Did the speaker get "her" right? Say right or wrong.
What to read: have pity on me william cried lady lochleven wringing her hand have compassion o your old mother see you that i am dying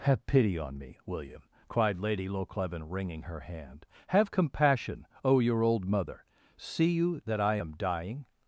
right